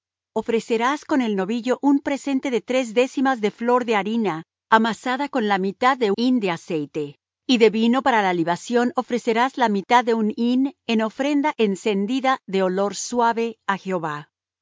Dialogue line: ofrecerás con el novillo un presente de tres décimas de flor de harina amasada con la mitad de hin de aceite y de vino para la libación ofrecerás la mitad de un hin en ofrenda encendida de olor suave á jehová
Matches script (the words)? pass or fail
pass